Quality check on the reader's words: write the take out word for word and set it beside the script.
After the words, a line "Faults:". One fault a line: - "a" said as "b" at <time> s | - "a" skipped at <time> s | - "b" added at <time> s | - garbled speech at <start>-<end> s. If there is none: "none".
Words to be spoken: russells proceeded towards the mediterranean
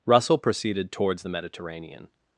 russell proceeded towards the mediterranean
Faults:
- "russells" said as "russell" at 0.1 s